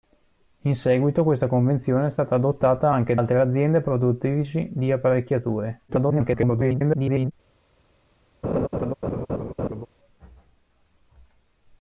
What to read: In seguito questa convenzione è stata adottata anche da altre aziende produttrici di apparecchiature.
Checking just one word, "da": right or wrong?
wrong